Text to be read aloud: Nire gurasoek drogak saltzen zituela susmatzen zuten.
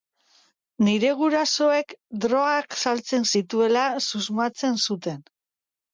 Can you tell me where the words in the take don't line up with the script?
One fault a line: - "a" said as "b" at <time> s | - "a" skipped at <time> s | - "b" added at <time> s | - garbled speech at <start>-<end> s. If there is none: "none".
none